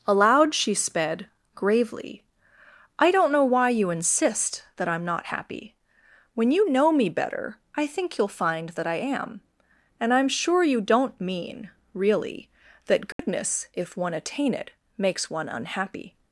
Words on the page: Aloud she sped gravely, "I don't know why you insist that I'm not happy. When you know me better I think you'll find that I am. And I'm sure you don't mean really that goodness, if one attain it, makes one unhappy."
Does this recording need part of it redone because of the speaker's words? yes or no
no